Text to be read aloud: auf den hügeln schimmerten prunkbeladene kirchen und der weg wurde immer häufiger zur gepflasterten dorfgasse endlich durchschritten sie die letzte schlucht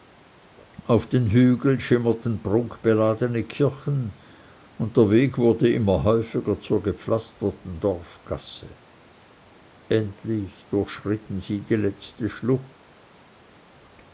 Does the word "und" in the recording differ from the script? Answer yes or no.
no